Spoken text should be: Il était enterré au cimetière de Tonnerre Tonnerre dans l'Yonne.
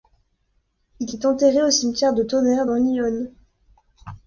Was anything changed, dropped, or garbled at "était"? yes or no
yes